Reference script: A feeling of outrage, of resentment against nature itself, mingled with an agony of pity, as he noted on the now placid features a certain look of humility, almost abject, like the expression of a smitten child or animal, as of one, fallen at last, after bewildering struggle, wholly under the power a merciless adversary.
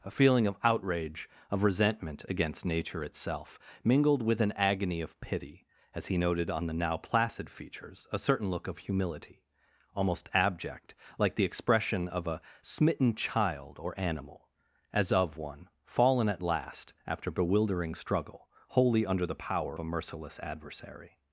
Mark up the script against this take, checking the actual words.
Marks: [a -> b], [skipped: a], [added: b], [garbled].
A feeling of outrage, of resentment against nature itself, mingled with an agony of pity, as he noted on the now placid features a certain look of humility, almost abject, like the expression of a smitten child or animal, as of one, fallen at last, after bewildering struggle, wholly under the power a merciless adversary.